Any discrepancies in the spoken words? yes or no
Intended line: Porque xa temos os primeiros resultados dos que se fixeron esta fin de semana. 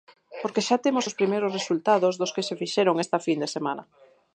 no